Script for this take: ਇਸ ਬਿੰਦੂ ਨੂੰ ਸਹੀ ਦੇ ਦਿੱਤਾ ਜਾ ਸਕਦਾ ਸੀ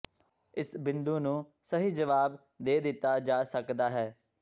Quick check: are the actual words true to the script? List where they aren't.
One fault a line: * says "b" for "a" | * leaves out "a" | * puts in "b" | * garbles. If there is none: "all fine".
* puts in "ਜਵਾਬ"
* says "ਹੈ" for "ਸੀ"